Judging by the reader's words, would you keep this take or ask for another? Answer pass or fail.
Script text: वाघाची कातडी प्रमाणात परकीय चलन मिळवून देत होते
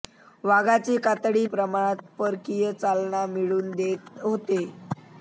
pass